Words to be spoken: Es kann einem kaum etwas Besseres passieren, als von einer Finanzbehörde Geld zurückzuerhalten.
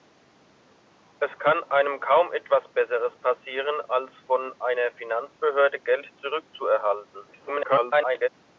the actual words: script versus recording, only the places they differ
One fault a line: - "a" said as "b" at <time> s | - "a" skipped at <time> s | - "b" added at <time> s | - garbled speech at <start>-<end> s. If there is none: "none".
- garbled speech at 7.3-8.3 s